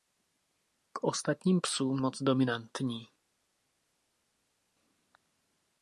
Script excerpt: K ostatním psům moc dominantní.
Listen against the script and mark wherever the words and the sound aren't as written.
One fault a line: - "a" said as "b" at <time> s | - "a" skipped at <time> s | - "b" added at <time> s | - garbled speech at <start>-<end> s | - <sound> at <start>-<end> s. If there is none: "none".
none